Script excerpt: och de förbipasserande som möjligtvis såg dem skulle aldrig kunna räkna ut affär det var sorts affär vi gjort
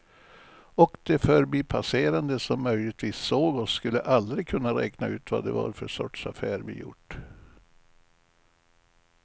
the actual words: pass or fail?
fail